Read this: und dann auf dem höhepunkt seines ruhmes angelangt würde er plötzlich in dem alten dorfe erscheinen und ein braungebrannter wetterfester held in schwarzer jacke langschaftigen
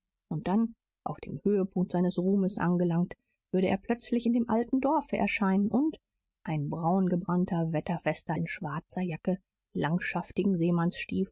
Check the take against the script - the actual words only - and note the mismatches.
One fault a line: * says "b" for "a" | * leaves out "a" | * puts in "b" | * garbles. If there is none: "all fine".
* leaves out "held"